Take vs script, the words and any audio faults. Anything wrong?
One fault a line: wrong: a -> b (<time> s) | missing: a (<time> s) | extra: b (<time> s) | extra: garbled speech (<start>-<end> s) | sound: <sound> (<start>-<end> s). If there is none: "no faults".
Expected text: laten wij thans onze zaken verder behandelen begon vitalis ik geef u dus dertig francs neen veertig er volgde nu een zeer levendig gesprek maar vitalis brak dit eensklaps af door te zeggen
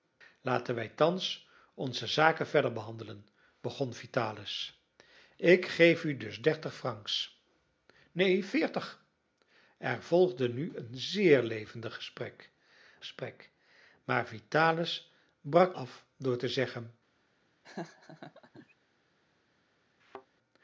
extra: gesprek (13.0 s)
missing: dit eensklaps (15.8 s)
sound: laugh (17.6-18.7 s)
sound: thud (20.0-20.3 s)